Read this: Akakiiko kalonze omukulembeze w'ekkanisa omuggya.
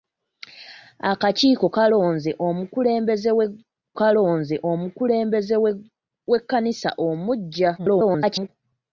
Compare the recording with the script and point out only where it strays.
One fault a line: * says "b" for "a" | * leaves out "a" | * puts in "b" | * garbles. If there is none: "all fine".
* puts in "kalonze omukulembeze"
* garbles